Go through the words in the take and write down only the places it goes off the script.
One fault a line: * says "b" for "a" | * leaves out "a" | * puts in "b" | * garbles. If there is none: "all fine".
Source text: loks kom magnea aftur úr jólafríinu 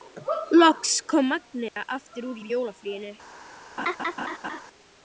* puts in "úr"